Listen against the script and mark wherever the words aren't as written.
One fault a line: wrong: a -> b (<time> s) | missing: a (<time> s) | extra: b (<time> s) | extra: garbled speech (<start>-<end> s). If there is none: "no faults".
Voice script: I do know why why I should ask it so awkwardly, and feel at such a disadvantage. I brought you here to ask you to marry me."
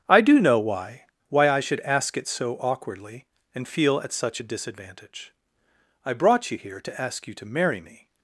no faults